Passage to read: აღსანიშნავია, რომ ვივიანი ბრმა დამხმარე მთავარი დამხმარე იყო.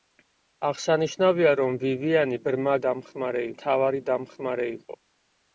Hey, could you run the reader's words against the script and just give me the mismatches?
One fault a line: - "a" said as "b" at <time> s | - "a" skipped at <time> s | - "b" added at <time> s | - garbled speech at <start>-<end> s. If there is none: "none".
none